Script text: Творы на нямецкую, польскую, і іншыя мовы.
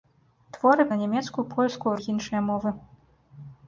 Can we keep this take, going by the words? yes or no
yes